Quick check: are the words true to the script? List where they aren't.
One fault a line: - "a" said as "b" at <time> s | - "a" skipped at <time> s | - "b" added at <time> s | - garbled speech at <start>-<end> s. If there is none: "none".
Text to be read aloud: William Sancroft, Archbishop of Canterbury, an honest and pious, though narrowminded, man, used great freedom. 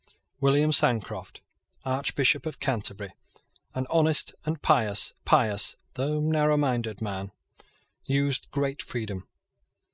- "pious" added at 5.3 s